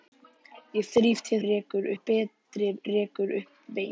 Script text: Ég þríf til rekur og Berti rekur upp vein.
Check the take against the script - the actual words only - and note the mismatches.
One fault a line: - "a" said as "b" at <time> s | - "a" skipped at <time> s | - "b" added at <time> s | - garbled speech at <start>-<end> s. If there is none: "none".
none